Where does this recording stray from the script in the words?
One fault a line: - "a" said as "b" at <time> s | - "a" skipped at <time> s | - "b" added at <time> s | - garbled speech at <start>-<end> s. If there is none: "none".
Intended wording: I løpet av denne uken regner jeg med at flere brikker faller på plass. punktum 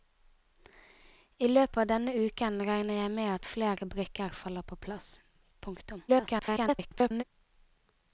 - garbled speech at 6.1-7.2 s